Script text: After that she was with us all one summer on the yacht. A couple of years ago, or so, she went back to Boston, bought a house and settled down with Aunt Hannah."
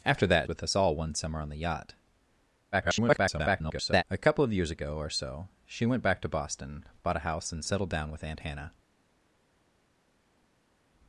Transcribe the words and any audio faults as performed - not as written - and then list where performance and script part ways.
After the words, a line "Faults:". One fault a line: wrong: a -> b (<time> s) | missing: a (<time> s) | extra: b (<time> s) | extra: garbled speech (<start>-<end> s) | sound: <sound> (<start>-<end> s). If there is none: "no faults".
After that with us all one summer on the yacht. [garbled] A couple of years ago, or so, she went back to Boston, bought a house and settled down with Aunt Hannah."
Faults:
missing: she was (0.5 s)
extra: garbled speech (2.7-4.0 s)